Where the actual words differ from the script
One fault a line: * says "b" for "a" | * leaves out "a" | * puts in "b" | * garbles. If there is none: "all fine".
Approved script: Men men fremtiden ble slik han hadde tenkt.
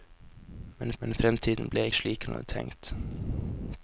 all fine